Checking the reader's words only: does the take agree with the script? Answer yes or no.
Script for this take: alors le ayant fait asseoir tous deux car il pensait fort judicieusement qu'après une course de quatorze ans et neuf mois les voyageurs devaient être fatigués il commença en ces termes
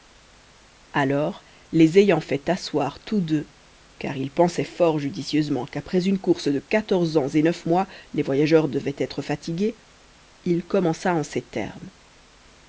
no